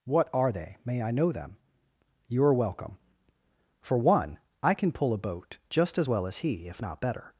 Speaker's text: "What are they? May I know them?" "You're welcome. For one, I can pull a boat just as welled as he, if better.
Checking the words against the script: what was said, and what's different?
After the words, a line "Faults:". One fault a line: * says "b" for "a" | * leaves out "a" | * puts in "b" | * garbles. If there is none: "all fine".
"What are they? May I know them?" "You're welcome. For one, I can pull a boat just as well as he, if not better.
Faults:
* says "well" for "welled"
* puts in "not"